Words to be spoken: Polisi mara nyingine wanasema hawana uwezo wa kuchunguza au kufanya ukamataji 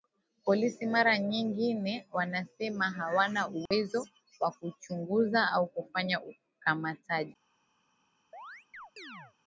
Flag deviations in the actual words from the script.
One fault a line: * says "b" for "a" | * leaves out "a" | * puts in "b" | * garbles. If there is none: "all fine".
all fine